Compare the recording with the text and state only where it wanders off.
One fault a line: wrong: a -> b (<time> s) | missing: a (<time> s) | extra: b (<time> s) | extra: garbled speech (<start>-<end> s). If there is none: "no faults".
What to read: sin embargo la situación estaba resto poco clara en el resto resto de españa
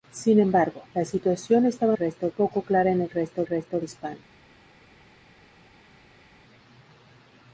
no faults